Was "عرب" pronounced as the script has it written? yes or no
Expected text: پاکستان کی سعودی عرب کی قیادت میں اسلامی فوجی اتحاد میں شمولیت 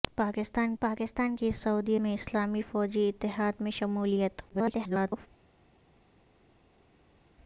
no